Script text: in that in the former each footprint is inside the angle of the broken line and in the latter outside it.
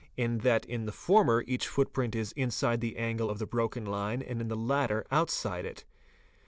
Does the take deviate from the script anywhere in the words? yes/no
no